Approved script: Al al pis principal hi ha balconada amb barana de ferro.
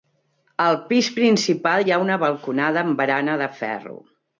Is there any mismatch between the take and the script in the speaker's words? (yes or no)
yes